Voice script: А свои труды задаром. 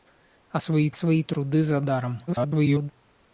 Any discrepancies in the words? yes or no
yes